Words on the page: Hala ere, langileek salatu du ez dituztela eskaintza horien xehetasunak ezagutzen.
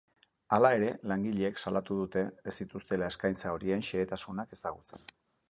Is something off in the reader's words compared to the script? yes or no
yes